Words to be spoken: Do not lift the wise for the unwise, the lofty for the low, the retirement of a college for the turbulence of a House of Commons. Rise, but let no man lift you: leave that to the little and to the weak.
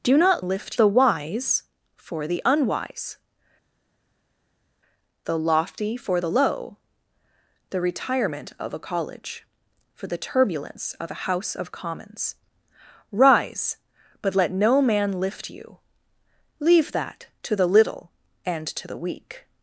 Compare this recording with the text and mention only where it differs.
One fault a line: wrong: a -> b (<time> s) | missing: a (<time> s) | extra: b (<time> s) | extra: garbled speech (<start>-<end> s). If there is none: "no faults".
no faults